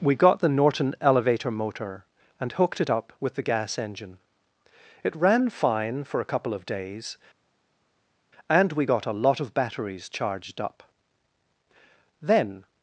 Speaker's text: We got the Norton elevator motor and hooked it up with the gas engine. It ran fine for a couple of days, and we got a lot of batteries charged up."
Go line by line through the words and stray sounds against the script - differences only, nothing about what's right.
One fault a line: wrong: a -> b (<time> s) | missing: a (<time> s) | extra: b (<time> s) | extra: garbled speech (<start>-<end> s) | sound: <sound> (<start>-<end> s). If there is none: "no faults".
extra: Then (12.2 s)